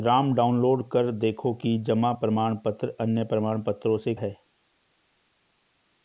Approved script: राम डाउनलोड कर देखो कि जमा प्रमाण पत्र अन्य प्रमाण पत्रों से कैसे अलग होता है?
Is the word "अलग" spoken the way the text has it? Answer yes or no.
no